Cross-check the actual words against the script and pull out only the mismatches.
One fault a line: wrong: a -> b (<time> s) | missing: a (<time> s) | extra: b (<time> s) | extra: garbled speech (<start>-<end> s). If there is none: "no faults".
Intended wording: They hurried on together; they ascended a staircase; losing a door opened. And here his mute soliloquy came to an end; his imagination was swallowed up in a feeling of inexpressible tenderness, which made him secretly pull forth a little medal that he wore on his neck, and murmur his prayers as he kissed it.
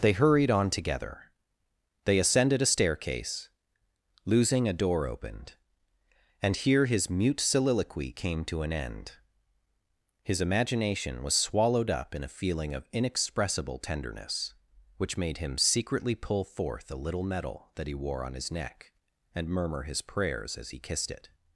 no faults